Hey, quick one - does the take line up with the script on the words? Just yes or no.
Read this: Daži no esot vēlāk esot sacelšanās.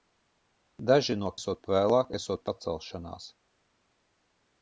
yes